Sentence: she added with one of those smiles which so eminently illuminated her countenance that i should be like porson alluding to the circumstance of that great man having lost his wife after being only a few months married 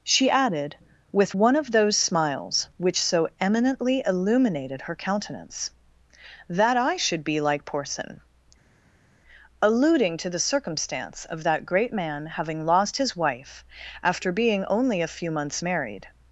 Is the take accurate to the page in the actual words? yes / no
yes